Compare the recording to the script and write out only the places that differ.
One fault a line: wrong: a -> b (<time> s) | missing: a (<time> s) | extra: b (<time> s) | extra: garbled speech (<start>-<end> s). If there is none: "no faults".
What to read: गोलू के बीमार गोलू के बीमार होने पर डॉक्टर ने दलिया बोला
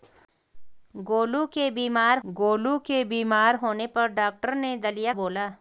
no faults